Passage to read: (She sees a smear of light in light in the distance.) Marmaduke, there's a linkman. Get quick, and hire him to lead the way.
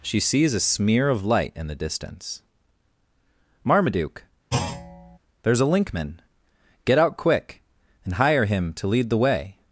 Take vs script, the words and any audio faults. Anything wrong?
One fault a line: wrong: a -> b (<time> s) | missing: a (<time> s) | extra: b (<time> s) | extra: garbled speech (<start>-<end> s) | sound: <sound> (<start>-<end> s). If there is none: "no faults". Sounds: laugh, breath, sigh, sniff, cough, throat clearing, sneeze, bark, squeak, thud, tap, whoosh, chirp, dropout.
missing: light in (1.7 s)
sound: thud (4.5-5.2 s)
extra: out (7.0 s)